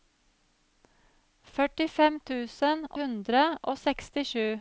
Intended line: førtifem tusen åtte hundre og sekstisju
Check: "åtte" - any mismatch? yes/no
yes